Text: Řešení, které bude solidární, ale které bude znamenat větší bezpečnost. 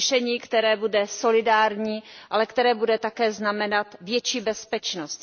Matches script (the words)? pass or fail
fail